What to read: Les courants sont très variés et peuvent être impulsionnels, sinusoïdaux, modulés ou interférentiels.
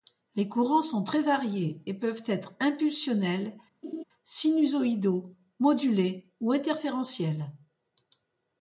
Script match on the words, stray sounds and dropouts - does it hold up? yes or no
no